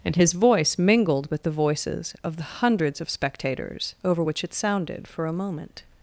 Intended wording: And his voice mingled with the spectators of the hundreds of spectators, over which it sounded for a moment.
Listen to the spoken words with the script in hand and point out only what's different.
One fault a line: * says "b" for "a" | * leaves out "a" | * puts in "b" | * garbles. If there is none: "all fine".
* says "voices" for "spectators"